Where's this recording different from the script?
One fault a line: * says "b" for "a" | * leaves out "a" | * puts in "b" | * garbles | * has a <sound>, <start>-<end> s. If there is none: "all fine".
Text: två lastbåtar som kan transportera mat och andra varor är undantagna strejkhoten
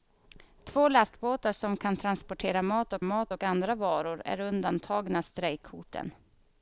* puts in "mat och"